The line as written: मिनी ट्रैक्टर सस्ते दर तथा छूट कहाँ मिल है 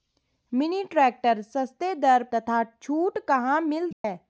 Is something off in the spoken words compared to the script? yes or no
no